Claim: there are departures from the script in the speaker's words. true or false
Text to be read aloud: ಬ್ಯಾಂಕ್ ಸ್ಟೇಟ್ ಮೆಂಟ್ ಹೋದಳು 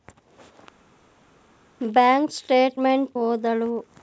false